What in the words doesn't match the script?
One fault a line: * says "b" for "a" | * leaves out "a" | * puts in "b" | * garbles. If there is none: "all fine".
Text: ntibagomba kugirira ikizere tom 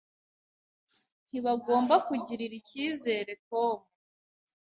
all fine